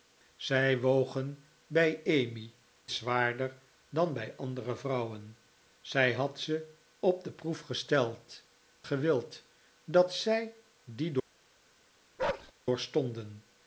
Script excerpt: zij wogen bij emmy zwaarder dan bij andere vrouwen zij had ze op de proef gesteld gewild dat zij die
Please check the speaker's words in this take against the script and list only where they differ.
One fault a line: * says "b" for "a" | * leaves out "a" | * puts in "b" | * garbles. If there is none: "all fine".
all fine